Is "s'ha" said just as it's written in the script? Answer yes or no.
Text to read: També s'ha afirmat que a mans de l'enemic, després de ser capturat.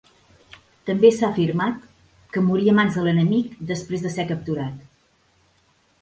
yes